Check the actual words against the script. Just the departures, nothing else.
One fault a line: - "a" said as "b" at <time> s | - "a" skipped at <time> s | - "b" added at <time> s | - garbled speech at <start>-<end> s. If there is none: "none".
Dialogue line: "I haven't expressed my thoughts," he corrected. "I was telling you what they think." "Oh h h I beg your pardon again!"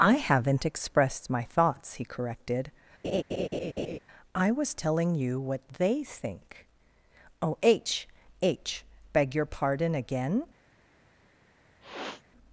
- "I" skipped at 8.8 s